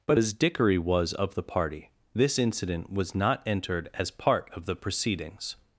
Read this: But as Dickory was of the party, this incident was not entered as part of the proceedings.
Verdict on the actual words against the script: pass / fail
pass